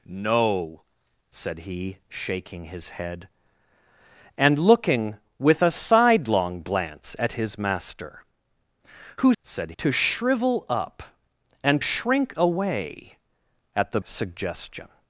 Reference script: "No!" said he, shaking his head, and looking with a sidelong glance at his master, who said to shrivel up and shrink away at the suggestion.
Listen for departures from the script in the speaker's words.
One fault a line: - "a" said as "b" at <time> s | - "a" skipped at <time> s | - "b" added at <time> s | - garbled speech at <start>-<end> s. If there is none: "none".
none